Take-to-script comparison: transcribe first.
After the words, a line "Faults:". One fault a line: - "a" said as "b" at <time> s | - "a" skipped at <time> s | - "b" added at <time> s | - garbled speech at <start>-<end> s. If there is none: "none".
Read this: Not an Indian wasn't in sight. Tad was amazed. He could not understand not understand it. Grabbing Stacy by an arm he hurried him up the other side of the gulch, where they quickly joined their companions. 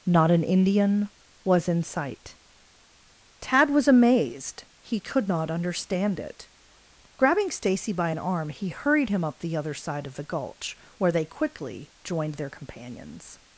Not an Indian was in sight. Tad was amazed. He could not understand it. Grabbing Stacy by an arm he hurried him up the other side of the gulch, where they quickly joined their companions.
Faults:
- "wasn't" said as "was" at 1.4 s
- "not understand" skipped at 6.2 s